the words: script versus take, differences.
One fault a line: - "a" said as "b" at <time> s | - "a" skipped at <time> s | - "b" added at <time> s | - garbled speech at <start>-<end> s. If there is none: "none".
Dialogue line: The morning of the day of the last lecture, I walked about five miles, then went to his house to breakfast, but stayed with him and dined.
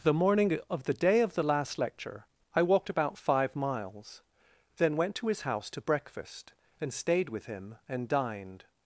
- "but" said as "and" at 6.8 s